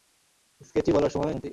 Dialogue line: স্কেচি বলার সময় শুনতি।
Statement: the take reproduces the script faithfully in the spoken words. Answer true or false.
true